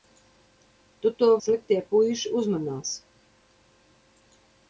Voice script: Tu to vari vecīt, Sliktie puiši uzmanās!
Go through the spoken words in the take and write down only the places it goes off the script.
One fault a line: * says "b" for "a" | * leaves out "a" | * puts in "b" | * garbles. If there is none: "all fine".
* leaves out "vari vecīt"